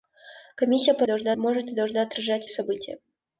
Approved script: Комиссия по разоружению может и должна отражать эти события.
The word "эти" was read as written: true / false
false